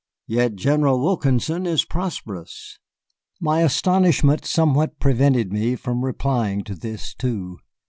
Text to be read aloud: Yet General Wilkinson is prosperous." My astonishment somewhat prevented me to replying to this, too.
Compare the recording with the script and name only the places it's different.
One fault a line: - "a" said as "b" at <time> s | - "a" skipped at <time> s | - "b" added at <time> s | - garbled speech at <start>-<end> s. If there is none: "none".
- "to" said as "from" at 5.7 s